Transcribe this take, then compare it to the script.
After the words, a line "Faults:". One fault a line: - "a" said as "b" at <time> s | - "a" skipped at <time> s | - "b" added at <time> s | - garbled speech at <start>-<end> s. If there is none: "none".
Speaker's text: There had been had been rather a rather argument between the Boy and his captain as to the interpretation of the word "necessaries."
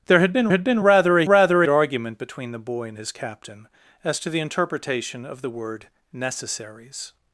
There had been had been rather a rather argument between the Boy and his captain as to the interpretation of the word "necessaries."
Faults:
none